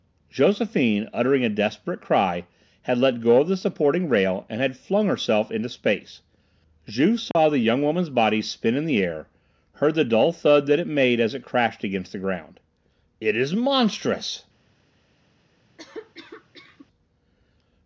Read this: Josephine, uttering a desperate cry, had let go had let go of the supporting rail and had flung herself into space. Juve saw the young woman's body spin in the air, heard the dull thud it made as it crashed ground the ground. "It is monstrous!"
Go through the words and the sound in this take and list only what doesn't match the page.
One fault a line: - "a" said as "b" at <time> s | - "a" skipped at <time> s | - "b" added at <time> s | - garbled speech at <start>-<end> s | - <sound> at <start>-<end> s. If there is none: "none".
- "had let go" skipped at 3.4 s
- dropout at 7.3-7.4 s
- "that" added at 10.7 s
- "ground" said as "against" at 11.8 s
- cough at 15.8-16.9 s